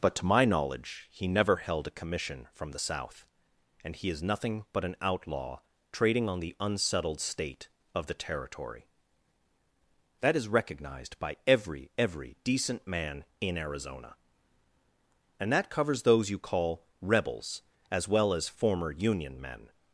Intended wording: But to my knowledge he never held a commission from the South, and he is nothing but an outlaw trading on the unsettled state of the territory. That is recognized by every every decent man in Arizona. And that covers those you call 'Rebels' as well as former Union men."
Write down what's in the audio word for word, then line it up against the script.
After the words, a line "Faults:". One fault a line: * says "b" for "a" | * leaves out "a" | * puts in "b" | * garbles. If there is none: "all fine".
But to my knowledge he never held a commission from the South, and he is nothing but an outlaw trading on the unsettled state of the territory. That is recognized by every every decent man in Arizona. And that covers those you call 'Rebels' as well as former Union men."
Faults:
all fine